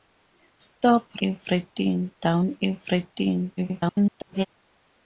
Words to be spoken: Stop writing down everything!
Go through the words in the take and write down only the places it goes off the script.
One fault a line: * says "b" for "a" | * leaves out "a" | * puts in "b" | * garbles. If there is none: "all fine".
* says "everything" for "writing"
* garbles